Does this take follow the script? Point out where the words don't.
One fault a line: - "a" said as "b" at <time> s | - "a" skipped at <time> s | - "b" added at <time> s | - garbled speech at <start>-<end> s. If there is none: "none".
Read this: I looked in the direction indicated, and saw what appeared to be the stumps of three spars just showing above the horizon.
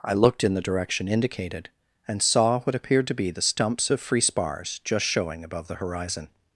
- "three" said as "free" at 4.0 s